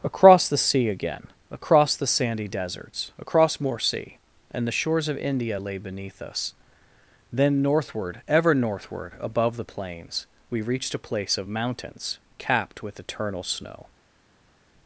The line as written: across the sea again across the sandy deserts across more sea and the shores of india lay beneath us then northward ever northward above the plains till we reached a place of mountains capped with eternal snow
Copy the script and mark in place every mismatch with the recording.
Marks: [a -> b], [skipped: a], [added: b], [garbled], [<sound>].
across the sea again across the sandy deserts across more sea and the shores of india lay beneath us then northward ever northward above the plains [skipped: till] we reached a place of mountains capped with eternal snow